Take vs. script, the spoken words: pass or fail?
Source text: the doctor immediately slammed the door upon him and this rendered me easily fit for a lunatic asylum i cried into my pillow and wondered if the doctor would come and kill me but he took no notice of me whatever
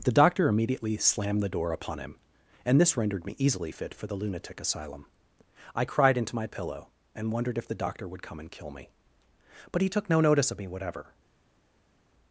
fail